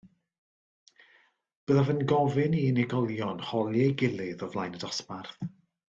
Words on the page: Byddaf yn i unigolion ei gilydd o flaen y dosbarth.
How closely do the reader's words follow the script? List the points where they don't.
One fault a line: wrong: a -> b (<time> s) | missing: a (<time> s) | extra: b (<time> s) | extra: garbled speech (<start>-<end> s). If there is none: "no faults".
extra: gofyn (2.1 s)
extra: holi (3.5 s)